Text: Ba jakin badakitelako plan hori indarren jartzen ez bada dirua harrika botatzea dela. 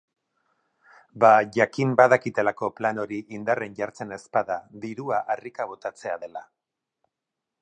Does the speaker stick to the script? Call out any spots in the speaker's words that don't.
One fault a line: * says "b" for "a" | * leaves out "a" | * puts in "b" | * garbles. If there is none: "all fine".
all fine